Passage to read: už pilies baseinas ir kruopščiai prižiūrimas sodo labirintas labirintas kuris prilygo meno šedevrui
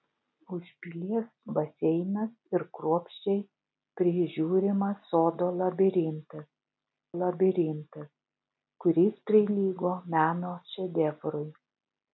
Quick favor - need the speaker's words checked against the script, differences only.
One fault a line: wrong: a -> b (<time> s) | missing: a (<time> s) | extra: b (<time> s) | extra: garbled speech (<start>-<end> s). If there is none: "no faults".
no faults